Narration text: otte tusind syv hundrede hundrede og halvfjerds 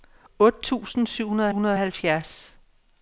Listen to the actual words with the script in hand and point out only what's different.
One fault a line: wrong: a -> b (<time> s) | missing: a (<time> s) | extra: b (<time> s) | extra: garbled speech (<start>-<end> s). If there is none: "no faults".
no faults